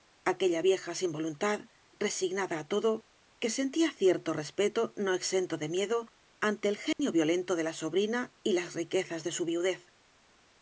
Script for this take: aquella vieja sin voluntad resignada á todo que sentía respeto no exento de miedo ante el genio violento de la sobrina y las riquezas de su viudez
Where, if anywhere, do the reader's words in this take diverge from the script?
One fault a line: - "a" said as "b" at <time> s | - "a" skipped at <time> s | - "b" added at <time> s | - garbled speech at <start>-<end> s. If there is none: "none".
- "cierto" added at 4.0 s